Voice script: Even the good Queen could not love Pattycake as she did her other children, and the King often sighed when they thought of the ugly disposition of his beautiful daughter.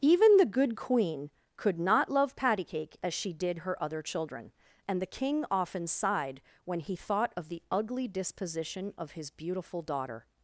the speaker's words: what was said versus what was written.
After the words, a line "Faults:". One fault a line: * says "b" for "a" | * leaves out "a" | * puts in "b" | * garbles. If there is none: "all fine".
Even the good Queen could not love Pattycake as she did her other children, and the King often sighed when he thought of the ugly disposition of his beautiful daughter.
Faults:
* says "he" for "they"